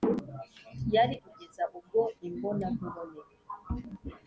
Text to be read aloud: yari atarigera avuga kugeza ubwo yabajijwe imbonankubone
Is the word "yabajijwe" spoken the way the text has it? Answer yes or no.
no